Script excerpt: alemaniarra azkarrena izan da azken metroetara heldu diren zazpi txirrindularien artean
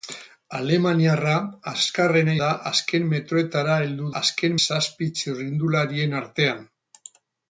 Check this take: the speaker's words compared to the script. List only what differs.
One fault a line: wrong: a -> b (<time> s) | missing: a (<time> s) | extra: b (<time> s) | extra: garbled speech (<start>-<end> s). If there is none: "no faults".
missing: izan (2.3 s)
wrong: diren -> azken (4.2 s)